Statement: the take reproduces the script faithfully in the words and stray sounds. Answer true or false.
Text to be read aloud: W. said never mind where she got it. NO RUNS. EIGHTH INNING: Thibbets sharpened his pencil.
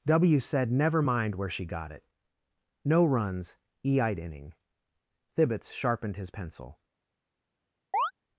false